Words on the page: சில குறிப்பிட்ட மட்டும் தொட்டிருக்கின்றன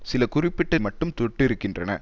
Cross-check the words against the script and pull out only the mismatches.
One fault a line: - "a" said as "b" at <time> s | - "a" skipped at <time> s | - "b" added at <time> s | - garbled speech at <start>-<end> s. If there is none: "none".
none